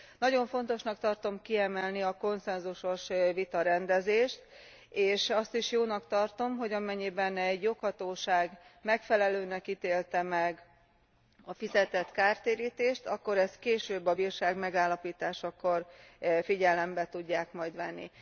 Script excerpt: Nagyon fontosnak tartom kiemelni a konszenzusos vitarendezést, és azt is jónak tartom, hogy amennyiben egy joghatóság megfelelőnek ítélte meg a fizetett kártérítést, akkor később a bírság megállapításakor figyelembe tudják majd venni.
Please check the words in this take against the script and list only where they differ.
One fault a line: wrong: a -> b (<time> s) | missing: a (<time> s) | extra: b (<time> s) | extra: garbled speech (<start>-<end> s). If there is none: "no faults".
extra: ezt (13.4 s)